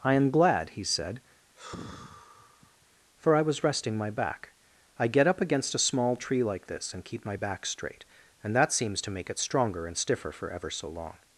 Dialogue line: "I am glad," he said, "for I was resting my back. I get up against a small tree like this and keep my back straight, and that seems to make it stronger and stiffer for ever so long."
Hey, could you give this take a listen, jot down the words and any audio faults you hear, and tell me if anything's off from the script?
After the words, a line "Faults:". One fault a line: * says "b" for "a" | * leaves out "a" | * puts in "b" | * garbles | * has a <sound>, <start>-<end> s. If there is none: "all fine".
"I am glad," he said, "for I was resting my back. I get up against a small tree like this and keep my back straight, and that seems to make it stronger and stiffer for ever so long."
Faults:
* has a sigh, 1.6-2.9 s